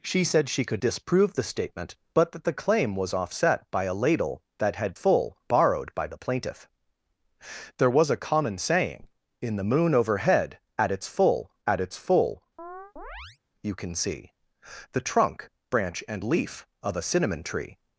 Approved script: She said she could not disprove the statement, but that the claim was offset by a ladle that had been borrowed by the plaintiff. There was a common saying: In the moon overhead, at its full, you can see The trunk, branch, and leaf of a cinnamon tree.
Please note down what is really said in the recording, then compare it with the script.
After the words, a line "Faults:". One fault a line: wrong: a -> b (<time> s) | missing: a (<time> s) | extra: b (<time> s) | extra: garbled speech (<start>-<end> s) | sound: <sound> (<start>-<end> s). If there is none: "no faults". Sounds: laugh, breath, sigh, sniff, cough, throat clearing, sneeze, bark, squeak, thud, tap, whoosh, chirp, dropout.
She said she could disprove the statement, but that the claim was offset by a ladle that had full borrowed by the plaintiff. There was a common saying: In the moon overhead, at its full at its full, you can see The trunk, branch, and leaf of a cinnamon tree.
Faults:
missing: not (0.8 s)
wrong: been -> full (4.9 s)
extra: at its full (11.6 s)
sound: chirp (12.6-13.4 s)